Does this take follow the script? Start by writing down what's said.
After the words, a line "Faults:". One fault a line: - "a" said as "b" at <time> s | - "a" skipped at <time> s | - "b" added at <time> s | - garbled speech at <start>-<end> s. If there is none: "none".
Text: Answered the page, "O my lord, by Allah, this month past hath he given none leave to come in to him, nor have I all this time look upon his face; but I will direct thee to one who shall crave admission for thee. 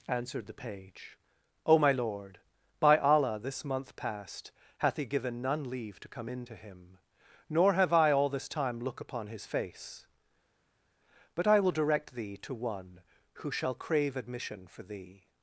Answered the page, "O my lord, by Allah, this month past hath he given none leave to come in to him, nor have I all this time look upon his face; but I will direct thee to one who shall crave admission for thee.
Faults:
none